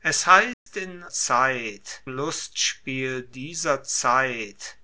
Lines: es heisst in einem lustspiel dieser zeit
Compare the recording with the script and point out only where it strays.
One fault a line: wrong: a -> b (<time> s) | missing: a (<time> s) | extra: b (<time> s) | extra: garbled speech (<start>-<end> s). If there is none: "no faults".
wrong: einem -> zeit (1.1 s)